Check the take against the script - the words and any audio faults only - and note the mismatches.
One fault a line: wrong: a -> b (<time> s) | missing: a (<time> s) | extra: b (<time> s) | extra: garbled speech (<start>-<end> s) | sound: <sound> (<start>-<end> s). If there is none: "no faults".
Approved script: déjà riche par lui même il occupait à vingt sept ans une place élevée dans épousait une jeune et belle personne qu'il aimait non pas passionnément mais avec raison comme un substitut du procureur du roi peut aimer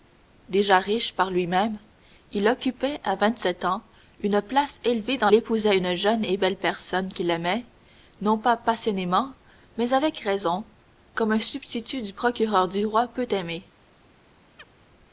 sound: chirp (14.6-14.7 s)